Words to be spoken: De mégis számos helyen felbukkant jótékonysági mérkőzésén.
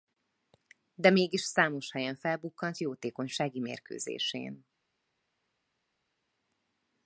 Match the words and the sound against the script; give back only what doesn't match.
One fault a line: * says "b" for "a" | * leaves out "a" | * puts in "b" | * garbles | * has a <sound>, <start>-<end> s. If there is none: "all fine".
all fine